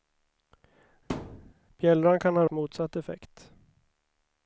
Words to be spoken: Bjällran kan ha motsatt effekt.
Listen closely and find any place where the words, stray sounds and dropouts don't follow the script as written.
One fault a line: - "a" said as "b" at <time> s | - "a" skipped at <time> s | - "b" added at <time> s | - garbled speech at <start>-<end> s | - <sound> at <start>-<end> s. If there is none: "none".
- thud at 1.1-1.5 s